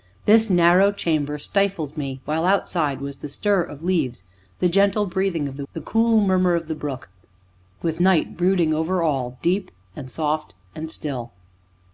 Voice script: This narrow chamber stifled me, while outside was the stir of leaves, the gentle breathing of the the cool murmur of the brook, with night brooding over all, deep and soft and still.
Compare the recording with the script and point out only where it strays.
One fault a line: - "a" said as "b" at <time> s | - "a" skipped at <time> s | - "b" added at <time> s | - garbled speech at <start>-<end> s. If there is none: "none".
none